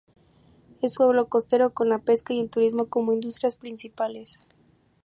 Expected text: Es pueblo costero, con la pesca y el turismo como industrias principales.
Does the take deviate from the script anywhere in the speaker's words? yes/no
no